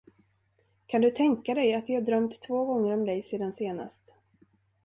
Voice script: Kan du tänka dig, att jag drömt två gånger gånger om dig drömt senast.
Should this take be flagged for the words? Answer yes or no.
yes